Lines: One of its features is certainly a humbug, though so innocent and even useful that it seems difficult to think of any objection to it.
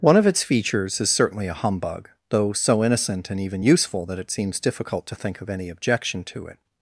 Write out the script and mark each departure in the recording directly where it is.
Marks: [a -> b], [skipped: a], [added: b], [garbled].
One of its features is certainly a humbug, though so innocent and even useful that it seems difficult to think of any objection to it.